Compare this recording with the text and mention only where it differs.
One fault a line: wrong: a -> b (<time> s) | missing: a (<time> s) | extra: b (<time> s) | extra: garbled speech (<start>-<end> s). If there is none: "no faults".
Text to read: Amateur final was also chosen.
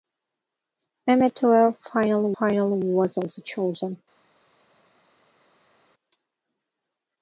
extra: final (2.4 s)